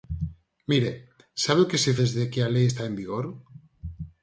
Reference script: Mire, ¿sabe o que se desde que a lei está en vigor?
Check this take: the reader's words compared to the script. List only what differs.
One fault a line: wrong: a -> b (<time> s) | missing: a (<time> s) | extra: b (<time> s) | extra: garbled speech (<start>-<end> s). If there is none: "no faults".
no faults